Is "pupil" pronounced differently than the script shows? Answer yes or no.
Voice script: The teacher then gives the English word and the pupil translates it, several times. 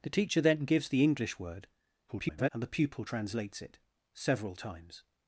no